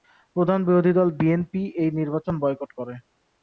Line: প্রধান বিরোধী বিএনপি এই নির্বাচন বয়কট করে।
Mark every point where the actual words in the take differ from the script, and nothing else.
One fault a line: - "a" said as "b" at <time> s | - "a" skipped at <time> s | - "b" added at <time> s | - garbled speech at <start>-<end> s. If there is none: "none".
- "দল" added at 0.9 s